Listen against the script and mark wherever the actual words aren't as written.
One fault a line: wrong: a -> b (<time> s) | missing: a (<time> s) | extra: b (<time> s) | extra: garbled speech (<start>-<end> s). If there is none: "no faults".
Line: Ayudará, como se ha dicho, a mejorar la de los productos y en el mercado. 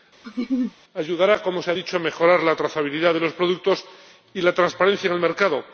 extra: trazabilidad (2.6 s)
extra: la transparencia (4.4 s)